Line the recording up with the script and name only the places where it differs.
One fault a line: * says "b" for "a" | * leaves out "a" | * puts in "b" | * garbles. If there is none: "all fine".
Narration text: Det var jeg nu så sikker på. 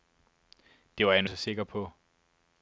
all fine